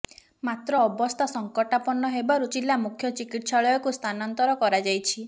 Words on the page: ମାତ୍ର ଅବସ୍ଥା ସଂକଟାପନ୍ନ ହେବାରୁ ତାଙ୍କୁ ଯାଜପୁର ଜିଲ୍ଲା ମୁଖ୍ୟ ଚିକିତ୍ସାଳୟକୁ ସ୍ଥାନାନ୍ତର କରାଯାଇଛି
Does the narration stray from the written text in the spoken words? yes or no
yes